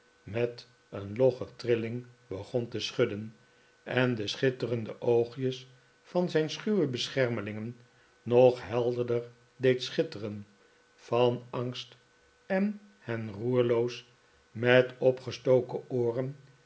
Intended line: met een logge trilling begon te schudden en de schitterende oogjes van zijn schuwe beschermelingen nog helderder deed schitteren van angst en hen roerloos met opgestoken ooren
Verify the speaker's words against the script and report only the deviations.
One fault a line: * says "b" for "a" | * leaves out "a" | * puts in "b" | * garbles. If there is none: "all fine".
all fine